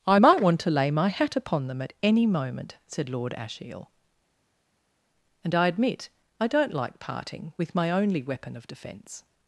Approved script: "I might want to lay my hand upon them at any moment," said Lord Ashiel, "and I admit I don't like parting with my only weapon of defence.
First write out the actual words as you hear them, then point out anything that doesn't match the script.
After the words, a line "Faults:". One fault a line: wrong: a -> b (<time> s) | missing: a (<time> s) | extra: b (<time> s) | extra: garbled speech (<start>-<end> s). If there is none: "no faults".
"I might want to lay my hat upon them at any moment," said Lord Ashiel, "and I admit I don't like parting with my only weapon of defence.
Faults:
wrong: hand -> hat (1.1 s)